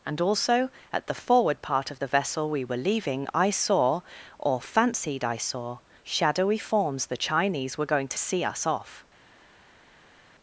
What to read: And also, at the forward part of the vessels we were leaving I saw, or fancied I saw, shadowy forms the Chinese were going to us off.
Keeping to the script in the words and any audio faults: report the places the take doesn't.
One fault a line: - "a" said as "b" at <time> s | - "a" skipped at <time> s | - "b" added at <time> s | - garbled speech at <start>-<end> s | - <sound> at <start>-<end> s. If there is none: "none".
- "vessels" said as "vessel" at 2.1 s
- "see" added at 8.2 s